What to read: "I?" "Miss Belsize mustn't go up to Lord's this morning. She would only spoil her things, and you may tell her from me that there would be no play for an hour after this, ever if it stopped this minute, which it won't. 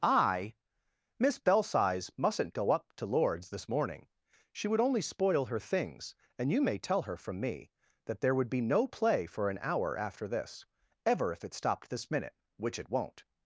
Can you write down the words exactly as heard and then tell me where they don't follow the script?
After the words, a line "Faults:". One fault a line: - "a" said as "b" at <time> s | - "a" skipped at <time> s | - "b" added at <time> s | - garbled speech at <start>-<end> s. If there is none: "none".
"I?" "Miss Belsize mustn't go up to Lord's this morning. She would only spoil her things, and you may tell her from me that there would be no play for an hour after this, ever if it stopped this minute, which it won't.
Faults:
none